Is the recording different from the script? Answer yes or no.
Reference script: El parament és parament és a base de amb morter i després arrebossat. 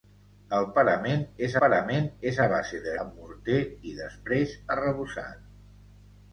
no